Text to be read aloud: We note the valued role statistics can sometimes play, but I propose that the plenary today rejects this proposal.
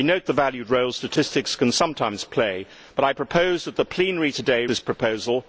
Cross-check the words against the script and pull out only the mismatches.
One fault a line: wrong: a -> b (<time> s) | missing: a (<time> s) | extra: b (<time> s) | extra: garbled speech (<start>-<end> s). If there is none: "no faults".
missing: rejects (4.7 s)